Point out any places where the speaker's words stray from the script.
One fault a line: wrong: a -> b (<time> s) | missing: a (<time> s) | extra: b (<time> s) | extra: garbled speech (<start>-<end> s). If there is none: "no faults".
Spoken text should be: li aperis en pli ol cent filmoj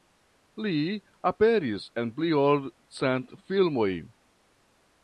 no faults